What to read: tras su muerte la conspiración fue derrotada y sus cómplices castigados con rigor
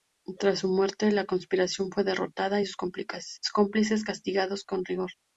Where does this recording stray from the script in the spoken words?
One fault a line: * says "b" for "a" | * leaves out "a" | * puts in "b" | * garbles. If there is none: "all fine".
all fine